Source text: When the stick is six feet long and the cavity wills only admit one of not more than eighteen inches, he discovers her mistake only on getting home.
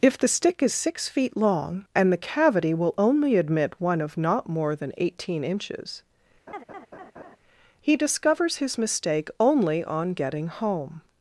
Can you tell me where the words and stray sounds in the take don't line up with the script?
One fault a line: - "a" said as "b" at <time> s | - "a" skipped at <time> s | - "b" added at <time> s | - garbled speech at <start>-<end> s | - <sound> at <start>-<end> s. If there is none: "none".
- "When" said as "If" at 0.0 s
- "wills" said as "will" at 2.7 s
- laugh at 6.5-7.4 s
- "her" said as "his" at 8.6 s